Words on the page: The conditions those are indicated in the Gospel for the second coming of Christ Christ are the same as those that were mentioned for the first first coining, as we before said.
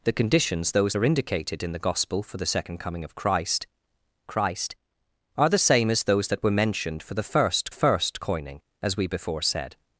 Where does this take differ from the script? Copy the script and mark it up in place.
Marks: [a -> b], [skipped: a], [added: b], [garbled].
The conditions those are indicated in the Gospel for the second coming of Christ Christ are the same as those that were mentioned for the first first coining, as we before said.